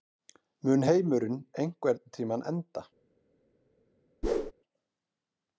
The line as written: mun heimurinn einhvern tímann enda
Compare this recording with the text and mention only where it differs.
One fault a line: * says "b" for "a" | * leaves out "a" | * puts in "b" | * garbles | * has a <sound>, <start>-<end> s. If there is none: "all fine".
* has a whoosh, 4.2-4.5 s